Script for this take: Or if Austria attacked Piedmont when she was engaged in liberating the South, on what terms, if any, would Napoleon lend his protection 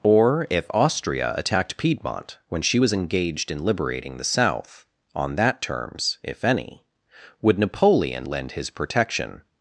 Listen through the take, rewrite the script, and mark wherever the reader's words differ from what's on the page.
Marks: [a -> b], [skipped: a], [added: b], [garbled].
Or if Austria attacked Piedmont when she was engaged in liberating the South, on [what -> that] terms, if any, would Napoleon lend his protection